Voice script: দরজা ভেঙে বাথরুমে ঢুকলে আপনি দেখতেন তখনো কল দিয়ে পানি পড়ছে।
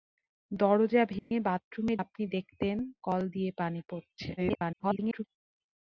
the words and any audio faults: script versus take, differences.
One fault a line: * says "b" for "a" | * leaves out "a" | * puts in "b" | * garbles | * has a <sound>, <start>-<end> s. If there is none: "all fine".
* has a dropout, 1.2-1.3 s
* leaves out "ঢুকলে"
* leaves out "তখনো"
* garbles